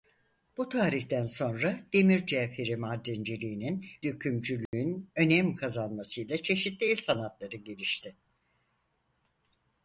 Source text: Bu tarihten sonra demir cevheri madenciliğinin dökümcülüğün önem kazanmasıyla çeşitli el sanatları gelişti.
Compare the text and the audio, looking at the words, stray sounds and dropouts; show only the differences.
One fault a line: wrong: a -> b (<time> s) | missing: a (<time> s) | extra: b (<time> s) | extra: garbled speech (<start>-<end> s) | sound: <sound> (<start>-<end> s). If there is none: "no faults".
sound: dropout (4.7-4.7 s)